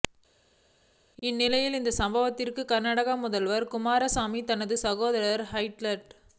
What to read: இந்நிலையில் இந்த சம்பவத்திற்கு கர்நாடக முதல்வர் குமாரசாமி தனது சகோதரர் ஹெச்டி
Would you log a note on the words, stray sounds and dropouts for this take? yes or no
no